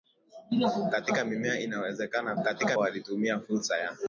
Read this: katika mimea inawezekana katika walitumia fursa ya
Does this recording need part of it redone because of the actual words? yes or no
no